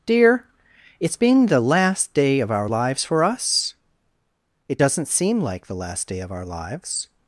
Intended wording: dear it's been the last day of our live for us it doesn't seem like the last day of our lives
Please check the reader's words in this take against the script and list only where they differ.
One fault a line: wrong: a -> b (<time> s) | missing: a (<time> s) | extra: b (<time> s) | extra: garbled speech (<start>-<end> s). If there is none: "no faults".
wrong: live -> lives (2.7 s)